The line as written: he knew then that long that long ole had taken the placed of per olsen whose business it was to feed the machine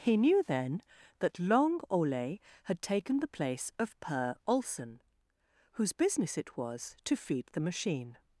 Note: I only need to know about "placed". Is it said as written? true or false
false